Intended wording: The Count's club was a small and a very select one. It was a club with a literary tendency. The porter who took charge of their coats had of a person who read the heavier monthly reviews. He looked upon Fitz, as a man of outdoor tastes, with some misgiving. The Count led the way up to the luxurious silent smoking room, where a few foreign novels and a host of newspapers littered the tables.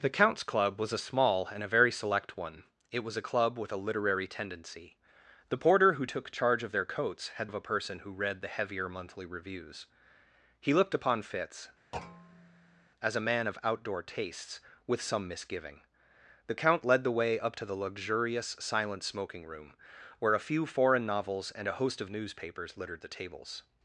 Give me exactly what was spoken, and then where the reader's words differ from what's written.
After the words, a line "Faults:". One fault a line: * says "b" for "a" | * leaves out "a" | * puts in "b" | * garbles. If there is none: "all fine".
The Count's club was a small and a very select one. It was a club with a literary tendency. The porter who took charge of their coats had of a person who read the heavier monthly reviews. He looked upon Fitz, as a man of outdoor tastes, with some misgiving. The Count led the way up to the luxurious silent smoking room, where a few foreign novels and a host of newspapers littered the tables.
Faults:
all fine